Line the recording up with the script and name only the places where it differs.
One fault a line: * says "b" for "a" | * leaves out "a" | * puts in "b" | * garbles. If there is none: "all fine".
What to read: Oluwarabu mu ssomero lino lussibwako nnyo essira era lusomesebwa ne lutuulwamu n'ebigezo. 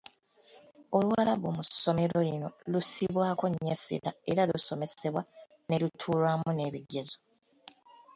all fine